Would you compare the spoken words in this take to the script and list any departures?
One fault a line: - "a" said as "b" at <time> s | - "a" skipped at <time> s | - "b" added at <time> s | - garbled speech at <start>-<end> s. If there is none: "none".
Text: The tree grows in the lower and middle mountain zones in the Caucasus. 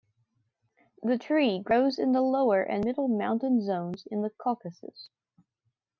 none